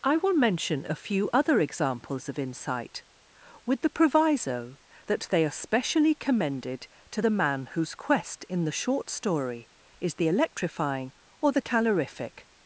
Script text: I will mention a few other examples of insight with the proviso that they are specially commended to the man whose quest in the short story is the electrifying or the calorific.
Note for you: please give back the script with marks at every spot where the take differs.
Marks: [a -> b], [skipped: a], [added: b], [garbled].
I will mention a few other examples of insight with the proviso that they are specially commended to the man whose quest in the short story is the electrifying or the calorific.